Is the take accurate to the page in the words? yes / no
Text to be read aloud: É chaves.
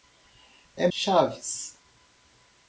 yes